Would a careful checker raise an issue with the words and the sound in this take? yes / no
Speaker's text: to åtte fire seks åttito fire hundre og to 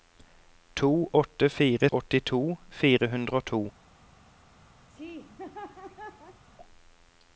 yes